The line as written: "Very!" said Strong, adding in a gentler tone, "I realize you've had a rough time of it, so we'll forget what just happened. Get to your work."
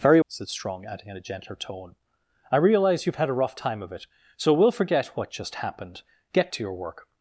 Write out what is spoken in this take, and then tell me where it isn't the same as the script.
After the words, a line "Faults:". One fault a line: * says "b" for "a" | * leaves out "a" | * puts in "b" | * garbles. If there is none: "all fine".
"Very!" said Strong, adding in a gentler tone, "I realize you've had a rough time of it, so we'll forget what just happened. Get to your work."
Faults:
all fine